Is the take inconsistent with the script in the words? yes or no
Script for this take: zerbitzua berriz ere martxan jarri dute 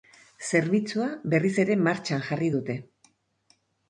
no